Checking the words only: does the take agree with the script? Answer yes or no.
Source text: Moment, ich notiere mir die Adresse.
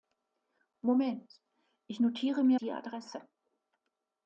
yes